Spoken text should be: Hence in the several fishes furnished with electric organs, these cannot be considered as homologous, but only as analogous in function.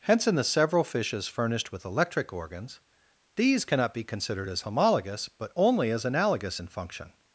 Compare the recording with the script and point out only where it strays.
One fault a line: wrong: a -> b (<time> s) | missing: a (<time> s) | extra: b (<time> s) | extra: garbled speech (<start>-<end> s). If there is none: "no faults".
no faults